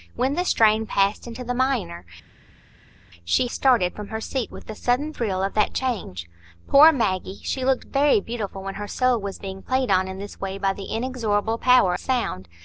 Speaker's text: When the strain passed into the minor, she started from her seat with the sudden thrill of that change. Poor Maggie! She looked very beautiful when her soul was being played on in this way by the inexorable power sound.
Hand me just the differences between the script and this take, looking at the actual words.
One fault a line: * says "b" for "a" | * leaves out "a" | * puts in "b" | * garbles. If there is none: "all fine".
all fine